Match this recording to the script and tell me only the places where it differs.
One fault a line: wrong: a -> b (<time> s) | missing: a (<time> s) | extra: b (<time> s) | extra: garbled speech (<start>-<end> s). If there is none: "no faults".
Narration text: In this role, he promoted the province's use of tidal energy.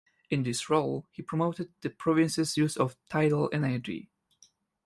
no faults